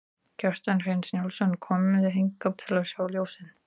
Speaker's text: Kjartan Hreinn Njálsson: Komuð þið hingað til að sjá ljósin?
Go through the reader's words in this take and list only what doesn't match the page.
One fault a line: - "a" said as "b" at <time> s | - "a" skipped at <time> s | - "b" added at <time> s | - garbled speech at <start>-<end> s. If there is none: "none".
none